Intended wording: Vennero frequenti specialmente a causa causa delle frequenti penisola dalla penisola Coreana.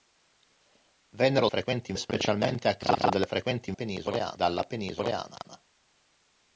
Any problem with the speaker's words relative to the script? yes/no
no